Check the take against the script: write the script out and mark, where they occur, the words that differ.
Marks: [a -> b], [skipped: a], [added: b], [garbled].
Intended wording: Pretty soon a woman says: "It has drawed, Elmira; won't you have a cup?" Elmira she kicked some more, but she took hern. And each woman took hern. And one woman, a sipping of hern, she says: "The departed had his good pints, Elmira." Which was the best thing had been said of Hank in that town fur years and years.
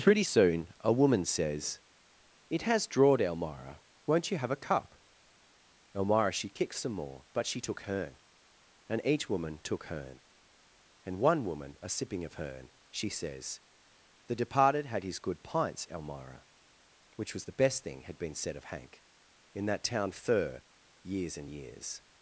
Pretty soon a woman says: "It has drawed, Elmira; won't you have a cup?" Elmira she kicked some more, but she took hern. And each woman took hern. And one woman, a sipping of hern, she says: "The departed had his good pints, Elmira." Which was the best thing had been said of Hank in that town fur years and years.